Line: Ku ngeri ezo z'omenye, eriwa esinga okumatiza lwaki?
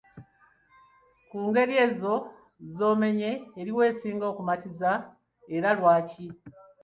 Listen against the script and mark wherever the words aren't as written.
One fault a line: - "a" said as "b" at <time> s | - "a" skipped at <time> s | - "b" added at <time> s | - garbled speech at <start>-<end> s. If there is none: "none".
- "era" added at 5.5 s